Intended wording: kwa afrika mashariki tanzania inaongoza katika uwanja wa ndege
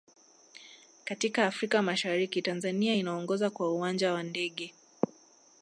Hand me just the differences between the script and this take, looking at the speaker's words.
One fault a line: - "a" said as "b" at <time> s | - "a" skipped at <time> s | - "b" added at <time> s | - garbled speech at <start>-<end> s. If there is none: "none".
- "kwa" said as "katika" at 1.1 s
- "katika" said as "kwa" at 3.5 s